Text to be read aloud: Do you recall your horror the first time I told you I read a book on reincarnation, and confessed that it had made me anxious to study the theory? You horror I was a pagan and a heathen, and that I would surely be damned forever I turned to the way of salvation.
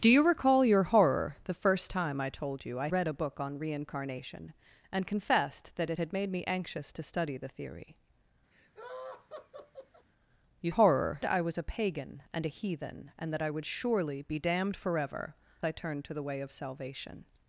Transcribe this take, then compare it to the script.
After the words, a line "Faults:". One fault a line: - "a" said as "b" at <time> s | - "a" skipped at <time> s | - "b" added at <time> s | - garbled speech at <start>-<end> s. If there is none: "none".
Do you recall your horror the first time I told you I read a book on reincarnation, and confessed that it had made me anxious to study the theory? You horror I was a pagan and a heathen, and that I would surely be damned forever I turned to the way of salvation.
Faults:
none